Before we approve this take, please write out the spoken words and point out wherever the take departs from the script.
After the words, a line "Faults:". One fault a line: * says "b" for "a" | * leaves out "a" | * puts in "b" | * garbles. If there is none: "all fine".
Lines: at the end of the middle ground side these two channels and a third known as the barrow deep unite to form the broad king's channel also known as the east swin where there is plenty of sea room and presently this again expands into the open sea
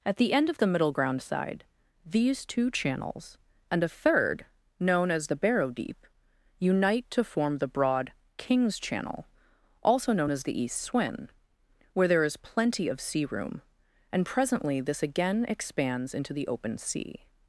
at the end of the middle ground side these two channels and a third known as the barrow deep unite to form the broad king's channel also known as the east swin where there is plenty of sea room and presently this again expands into the open sea
Faults:
all fine